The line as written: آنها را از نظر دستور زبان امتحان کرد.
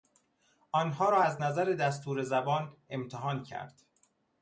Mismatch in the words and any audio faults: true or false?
false